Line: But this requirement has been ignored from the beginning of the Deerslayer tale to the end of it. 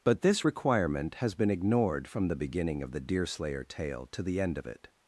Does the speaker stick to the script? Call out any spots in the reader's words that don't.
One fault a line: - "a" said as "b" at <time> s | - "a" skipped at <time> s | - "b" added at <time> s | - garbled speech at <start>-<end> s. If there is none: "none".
none